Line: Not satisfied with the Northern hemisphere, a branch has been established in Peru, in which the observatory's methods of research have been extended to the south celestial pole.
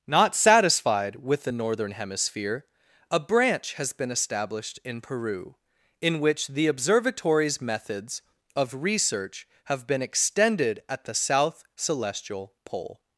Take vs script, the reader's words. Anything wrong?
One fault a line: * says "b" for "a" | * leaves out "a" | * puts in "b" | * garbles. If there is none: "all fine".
* says "at" for "to"